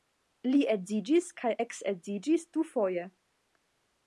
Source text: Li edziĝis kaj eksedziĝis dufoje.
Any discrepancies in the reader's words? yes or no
no